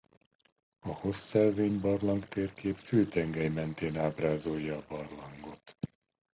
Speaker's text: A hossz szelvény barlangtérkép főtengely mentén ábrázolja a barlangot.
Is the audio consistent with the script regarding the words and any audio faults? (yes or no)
yes